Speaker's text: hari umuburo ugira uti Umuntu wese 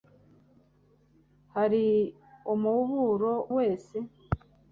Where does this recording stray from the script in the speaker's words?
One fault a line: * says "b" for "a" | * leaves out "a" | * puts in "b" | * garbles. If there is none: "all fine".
* leaves out "ugira uti Umuntu"